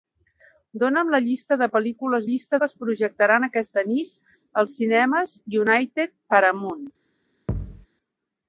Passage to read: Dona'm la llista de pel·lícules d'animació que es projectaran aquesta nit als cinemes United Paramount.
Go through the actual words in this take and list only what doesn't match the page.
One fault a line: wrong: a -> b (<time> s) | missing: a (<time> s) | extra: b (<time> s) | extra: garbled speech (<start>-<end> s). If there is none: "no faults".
wrong: d'animació -> llista (2.3 s)